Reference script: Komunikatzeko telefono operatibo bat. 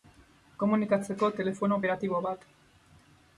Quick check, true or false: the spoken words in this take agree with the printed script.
true